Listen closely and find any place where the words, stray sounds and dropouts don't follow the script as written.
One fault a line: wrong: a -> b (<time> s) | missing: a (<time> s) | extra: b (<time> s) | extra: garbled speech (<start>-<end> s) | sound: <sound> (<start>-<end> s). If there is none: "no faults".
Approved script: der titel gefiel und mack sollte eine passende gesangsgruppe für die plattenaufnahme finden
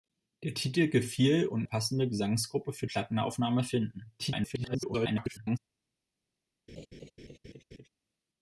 missing: mack sollte eine (1.7 s)
missing: die (2.9 s)
extra: garbled speech (4.2-5.6 s)
sound: laugh (6.7-7.9 s)